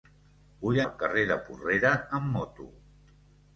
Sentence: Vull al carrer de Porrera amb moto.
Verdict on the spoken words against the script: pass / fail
pass